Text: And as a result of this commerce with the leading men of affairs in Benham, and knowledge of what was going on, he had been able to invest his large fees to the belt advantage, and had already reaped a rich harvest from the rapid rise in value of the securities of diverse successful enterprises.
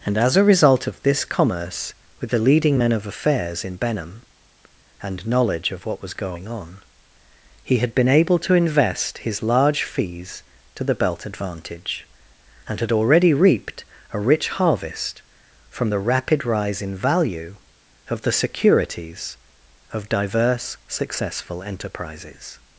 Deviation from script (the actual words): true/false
false